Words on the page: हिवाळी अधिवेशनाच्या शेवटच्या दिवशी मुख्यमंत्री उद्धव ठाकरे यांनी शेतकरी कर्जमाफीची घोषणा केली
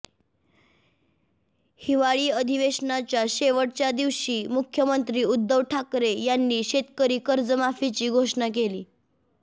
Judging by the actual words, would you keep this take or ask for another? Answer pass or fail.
pass